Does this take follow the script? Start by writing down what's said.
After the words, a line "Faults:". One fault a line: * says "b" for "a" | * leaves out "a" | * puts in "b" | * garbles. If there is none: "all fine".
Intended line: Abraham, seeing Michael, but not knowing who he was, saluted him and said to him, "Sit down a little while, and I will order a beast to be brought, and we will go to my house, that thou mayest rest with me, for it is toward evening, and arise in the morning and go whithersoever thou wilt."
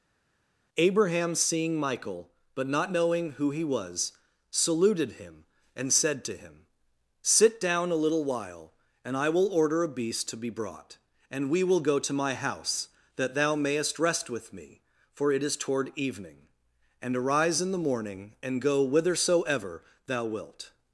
Abraham, seeing Michael, but not knowing who he was, saluted him and said to him, "Sit down a little while, and I will order a beast to be brought, and we will go to my house, that thou mayest rest with me, for it is toward evening, and arise in the morning and go whithersoever thou wilt."
Faults:
all fine